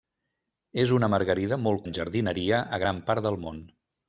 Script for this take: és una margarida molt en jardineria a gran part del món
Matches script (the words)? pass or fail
pass